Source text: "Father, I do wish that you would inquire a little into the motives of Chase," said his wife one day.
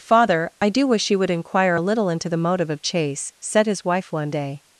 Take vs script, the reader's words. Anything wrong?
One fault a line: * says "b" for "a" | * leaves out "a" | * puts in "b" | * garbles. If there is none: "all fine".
* leaves out "that"
* says "motive" for "motives"